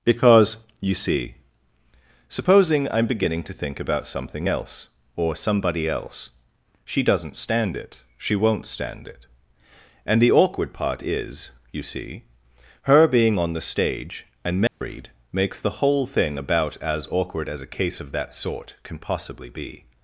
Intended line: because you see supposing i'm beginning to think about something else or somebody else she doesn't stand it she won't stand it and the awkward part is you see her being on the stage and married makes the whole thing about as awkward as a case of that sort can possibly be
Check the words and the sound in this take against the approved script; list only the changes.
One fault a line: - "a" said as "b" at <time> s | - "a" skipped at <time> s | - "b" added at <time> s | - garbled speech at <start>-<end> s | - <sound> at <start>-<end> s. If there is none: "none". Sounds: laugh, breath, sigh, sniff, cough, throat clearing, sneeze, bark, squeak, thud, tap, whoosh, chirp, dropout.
- dropout at 14.7-14.8 s